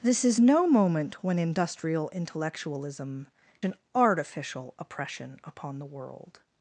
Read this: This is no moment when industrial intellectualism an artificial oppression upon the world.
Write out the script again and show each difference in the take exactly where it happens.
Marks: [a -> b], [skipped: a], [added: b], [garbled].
This is no moment when industrial intellectualism an artificial oppression upon the world.